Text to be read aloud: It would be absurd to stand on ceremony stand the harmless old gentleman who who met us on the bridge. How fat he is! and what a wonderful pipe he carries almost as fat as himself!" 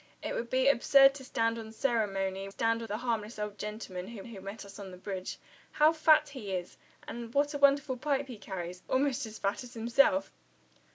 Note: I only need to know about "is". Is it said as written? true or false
true